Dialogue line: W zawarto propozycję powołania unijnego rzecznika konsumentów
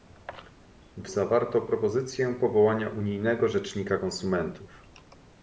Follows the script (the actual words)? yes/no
yes